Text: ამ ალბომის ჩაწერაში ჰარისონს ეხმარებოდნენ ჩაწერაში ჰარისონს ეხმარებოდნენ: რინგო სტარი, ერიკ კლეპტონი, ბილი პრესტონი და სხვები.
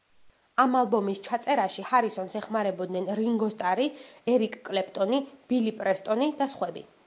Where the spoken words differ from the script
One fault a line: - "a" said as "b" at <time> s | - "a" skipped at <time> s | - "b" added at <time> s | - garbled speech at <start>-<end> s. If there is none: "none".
- "ჩაწერაში ჰარისონს ეხმარებოდნენ" skipped at 3.1 s